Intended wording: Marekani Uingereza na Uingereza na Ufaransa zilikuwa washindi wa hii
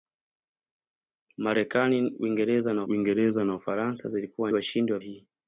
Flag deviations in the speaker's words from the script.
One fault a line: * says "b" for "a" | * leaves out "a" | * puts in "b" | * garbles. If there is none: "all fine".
all fine